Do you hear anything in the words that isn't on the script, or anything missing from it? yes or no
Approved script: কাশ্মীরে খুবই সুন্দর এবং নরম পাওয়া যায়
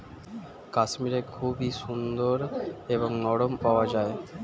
no